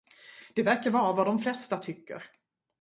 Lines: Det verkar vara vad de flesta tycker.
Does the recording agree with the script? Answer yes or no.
yes